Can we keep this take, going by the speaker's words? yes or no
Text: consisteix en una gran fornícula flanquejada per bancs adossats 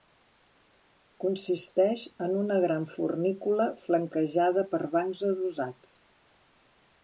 yes